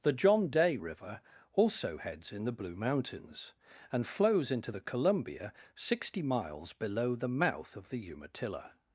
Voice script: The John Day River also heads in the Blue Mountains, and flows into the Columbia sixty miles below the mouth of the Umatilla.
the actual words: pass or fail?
pass